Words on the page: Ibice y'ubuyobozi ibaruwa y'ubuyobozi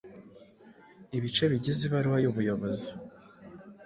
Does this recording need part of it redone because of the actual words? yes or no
yes